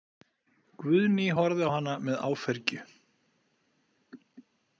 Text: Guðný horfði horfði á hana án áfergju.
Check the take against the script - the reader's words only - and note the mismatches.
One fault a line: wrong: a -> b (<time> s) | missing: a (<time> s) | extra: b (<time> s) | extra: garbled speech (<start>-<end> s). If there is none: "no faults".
missing: horfði (1.7 s)
wrong: án -> með (2.1 s)